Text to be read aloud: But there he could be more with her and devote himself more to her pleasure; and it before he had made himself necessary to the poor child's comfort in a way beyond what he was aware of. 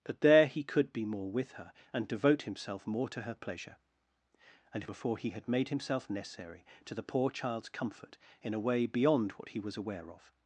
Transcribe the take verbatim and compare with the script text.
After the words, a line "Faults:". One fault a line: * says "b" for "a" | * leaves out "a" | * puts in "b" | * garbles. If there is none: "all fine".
But there he could be more with her and devote himself more to her pleasure; and it before he had made himself necessary to the poor child's comfort in a way beyond what he was aware of.
Faults:
all fine